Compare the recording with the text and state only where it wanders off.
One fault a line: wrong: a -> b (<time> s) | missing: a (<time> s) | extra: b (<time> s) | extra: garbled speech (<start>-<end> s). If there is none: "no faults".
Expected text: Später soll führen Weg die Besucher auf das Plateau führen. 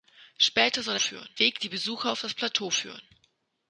no faults